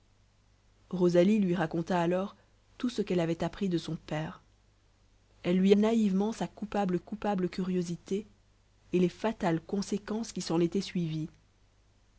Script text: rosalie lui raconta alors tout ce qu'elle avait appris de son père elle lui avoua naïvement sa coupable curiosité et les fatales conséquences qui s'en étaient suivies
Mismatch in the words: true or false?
true